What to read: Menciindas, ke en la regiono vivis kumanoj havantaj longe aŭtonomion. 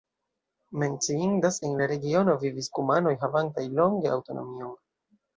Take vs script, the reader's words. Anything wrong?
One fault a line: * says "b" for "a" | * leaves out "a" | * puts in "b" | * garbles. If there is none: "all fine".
* leaves out "ke"